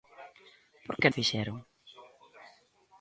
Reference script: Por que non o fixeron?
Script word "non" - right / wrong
wrong